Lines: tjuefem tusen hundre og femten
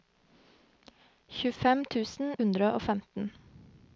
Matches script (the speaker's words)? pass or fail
pass